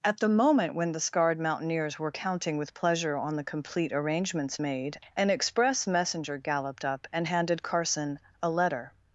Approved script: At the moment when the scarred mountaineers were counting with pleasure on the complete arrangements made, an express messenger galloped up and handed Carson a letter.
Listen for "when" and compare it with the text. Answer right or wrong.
right